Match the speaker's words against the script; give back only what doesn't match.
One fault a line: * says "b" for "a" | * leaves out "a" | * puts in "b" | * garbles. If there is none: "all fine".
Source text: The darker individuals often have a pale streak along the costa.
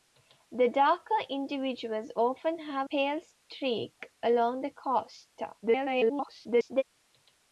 * leaves out "a"
* garbles